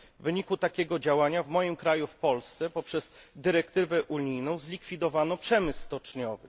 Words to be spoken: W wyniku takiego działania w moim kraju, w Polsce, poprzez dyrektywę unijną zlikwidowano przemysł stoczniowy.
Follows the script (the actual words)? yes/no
yes